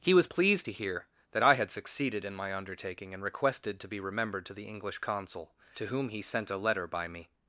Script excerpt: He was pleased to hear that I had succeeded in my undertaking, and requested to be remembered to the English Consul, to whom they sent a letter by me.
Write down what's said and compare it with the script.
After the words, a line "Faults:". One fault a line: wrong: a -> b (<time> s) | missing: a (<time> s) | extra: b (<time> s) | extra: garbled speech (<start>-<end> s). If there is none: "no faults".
He was pleased to hear that I had succeeded in my undertaking, and requested to be remembered to the English Consul, to whom he sent a letter by me.
Faults:
wrong: they -> he (6.1 s)